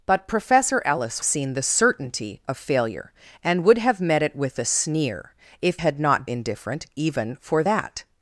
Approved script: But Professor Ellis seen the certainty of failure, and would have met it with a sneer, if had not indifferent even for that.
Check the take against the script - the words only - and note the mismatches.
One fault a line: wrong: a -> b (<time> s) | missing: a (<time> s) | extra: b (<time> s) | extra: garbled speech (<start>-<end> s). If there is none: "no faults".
no faults